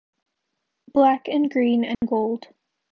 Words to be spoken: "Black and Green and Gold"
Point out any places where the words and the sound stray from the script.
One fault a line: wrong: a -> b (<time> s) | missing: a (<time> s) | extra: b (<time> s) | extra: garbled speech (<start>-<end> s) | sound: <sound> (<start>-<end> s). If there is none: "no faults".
sound: dropout (1.9-2.0 s)